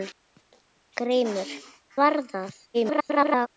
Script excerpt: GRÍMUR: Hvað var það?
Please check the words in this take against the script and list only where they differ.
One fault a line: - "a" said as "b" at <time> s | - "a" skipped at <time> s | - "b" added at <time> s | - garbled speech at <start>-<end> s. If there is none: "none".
- "Hvað" skipped at 1.5 s
- garbled speech at 2.7-3.5 s